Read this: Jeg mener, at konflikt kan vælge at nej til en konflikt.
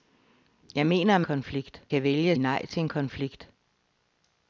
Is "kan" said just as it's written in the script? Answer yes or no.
yes